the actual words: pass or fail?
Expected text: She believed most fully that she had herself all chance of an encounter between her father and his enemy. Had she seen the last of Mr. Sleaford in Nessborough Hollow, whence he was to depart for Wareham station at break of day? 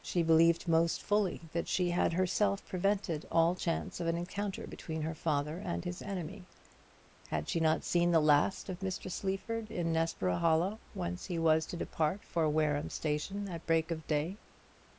fail